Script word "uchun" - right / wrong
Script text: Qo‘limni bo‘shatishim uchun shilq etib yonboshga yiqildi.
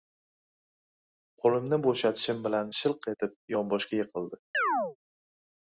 wrong